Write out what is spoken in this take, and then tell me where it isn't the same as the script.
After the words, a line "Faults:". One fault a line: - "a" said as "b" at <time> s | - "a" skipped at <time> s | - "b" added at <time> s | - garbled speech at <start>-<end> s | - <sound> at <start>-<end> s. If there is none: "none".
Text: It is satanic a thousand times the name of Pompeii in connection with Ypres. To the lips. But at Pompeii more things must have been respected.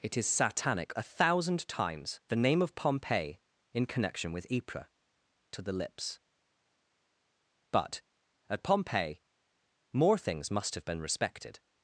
It is satanic a thousand times the name of Pompeii in connection with Ypres. To the lips. But at Pompeii more things must have been respected.
Faults:
none